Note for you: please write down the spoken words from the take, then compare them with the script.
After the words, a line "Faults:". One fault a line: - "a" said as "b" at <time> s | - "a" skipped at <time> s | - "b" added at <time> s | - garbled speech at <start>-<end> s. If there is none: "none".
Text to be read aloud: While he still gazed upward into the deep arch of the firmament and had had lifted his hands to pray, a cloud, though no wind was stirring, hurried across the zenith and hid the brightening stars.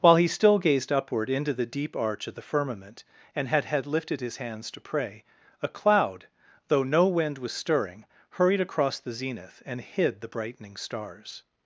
While he still gazed upward into the deep arch of the firmament and had had lifted his hands to pray, a cloud, though no wind was stirring, hurried across the zenith and hid the brightening stars.
Faults:
none